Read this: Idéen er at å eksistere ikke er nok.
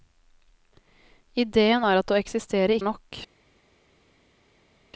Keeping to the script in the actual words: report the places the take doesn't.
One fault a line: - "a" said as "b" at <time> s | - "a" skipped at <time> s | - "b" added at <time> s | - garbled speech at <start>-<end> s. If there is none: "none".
- "ikke" skipped at 2.8 s